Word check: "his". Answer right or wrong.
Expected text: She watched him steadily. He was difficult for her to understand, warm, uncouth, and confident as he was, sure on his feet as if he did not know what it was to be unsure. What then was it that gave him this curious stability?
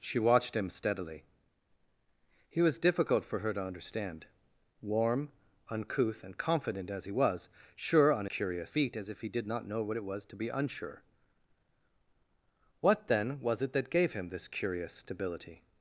wrong